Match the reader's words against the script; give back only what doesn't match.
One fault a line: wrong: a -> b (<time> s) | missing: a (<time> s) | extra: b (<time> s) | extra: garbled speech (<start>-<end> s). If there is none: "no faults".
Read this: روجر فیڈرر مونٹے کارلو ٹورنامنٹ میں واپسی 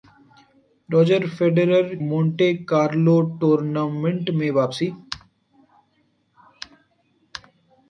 no faults